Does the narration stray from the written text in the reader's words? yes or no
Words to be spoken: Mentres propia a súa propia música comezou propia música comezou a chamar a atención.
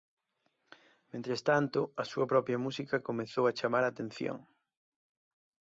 yes